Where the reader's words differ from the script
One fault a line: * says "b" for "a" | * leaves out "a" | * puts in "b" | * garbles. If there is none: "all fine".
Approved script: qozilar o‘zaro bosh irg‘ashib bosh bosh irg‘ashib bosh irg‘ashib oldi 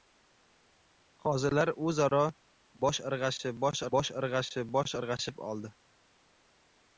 all fine